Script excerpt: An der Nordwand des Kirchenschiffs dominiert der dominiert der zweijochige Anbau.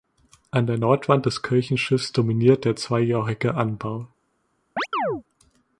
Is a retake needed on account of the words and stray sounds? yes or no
yes